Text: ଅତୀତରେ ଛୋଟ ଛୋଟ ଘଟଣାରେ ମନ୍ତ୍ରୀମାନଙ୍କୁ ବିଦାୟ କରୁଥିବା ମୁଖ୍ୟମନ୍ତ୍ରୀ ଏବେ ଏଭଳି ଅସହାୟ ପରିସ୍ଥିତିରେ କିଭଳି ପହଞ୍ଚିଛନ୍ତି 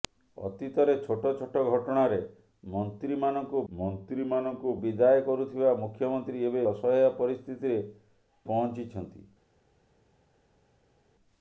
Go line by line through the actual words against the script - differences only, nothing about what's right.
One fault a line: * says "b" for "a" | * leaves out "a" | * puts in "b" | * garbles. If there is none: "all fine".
* puts in "ମନ୍ତ୍ରୀମାନଙ୍କୁ"
* leaves out "ଏଭଳି"
* leaves out "କିଭଳି"